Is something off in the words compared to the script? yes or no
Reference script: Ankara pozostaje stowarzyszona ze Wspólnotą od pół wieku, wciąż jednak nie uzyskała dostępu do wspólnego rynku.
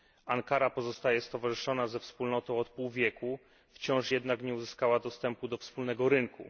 no